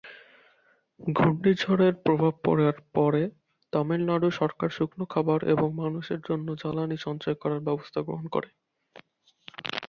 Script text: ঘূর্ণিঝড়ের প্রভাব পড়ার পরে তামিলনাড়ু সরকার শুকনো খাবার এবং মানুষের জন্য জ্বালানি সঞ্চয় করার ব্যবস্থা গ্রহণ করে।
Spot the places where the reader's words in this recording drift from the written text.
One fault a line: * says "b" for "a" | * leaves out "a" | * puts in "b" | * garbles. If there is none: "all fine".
all fine